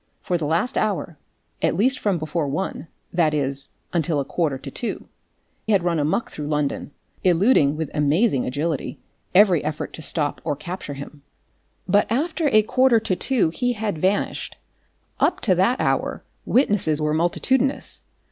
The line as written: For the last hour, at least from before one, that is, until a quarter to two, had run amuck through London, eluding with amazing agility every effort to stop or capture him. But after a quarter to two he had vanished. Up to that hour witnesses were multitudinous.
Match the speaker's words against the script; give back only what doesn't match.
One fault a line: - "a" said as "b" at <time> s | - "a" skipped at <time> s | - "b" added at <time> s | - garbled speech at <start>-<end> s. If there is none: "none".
none